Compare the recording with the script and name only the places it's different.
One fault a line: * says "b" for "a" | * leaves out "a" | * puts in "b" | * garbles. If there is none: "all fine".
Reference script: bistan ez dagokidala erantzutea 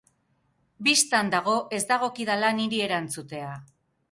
* puts in "dago"
* puts in "niri"